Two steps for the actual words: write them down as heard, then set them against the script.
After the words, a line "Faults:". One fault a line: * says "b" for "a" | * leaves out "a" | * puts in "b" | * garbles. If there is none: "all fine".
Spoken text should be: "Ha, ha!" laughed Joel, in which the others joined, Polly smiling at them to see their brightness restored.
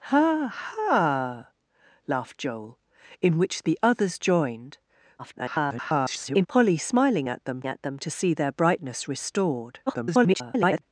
"Ha, ha!" laughed Joel, in which the others joined, [garbled] Polly smiling at them at them to see their brightness restored. [garbled]
Faults:
* garbles
* puts in "at them"
* garbles